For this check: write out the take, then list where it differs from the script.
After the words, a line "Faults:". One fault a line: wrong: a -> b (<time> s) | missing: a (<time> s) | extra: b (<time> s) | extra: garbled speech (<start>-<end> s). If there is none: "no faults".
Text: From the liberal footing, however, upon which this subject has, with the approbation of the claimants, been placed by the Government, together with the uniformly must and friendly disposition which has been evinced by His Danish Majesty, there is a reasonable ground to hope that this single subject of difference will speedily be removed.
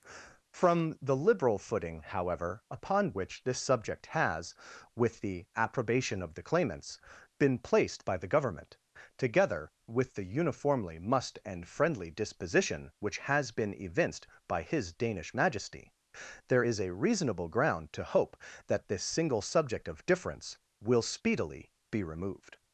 From the liberal footing, however, upon which this subject has, with the approbation of the claimants, been placed by the Government, together with the uniformly must and friendly disposition which has been evinced by His Danish Majesty, there is a reasonable ground to hope that this single subject of difference will speedily be removed.
Faults:
no faults